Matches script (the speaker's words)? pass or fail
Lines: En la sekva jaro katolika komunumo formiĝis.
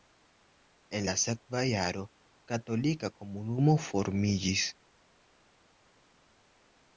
pass